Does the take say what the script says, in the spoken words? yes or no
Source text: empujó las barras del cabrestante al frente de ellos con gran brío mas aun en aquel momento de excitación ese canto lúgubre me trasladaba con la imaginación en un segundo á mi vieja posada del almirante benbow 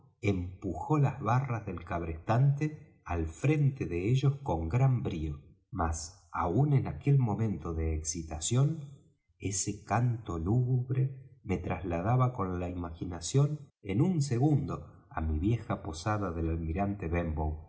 yes